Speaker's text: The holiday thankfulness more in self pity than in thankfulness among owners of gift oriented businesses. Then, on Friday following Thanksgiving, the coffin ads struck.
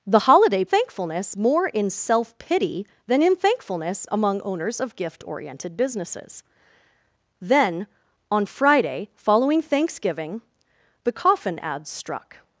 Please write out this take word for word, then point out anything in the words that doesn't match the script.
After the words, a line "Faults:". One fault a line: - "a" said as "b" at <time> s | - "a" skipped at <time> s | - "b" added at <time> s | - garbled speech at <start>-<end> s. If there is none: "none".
The holiday thankfulness more in self pity than in thankfulness among owners of gift oriented businesses. Then, on Friday following Thanksgiving, the coffin ads struck.
Faults:
none